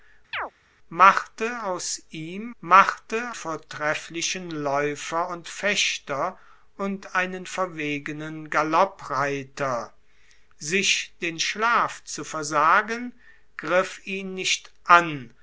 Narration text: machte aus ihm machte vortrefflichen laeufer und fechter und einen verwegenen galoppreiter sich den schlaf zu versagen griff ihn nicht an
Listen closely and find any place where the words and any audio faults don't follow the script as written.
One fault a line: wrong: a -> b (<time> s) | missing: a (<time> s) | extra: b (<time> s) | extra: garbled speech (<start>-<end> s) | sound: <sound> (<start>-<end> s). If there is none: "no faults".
sound: chirp (0.3-0.5 s)